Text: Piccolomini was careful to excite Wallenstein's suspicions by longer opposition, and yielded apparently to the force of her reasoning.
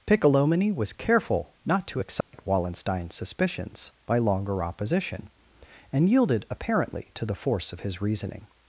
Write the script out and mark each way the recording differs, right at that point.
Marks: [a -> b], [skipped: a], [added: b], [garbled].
Piccolomini was careful [added: not] to excite Wallenstein's suspicions by longer opposition, and yielded apparently to the force of [her -> his] reasoning.